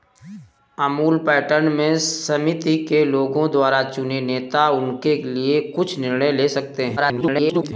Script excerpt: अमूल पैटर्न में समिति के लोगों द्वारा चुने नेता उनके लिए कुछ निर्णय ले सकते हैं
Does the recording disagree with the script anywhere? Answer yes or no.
yes